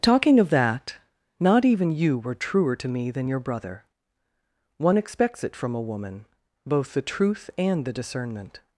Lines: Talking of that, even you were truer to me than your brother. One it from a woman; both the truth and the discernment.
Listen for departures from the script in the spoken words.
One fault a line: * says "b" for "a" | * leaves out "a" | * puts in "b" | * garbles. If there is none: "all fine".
* puts in "not"
* puts in "expects"